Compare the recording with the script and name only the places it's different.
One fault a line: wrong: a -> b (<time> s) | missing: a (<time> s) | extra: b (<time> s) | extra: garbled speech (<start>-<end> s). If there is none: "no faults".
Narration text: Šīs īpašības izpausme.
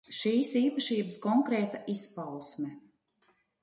extra: konkrēta (1.2 s)